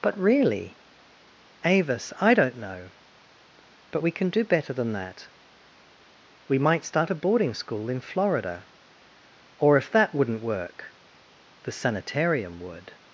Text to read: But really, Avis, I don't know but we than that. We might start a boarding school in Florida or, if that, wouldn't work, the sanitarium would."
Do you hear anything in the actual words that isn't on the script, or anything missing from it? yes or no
yes